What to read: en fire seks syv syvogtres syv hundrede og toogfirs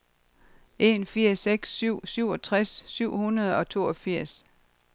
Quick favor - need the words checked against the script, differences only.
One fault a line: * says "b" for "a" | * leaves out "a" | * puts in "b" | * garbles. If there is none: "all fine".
all fine